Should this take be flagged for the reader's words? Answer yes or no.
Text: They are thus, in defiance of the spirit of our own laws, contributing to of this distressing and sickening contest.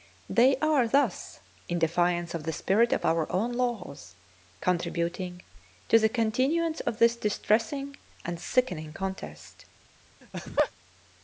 yes